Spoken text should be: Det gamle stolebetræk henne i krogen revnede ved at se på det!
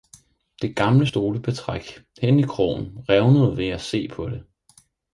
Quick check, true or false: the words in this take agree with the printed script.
true